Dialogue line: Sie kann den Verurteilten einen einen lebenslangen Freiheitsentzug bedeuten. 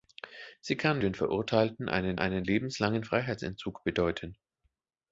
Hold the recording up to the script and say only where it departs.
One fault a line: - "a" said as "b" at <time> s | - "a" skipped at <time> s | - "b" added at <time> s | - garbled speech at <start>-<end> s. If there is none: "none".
none